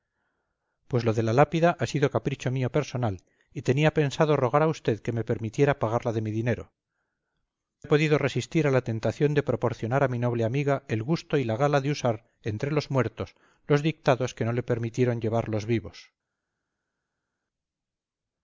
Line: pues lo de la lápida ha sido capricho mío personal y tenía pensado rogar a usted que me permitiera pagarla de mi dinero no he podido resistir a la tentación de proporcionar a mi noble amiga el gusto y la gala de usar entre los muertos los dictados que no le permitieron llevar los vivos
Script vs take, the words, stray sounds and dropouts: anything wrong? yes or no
yes